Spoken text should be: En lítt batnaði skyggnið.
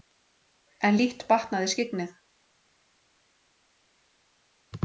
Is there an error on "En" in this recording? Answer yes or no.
no